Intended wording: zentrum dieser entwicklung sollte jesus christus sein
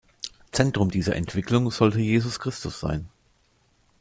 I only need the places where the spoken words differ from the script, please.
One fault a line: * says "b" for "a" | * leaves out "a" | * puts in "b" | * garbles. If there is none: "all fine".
all fine